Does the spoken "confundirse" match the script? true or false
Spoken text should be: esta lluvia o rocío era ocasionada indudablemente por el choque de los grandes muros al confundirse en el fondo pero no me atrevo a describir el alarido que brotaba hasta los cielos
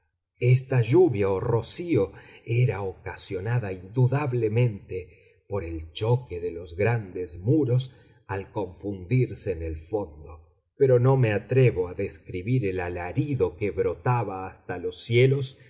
true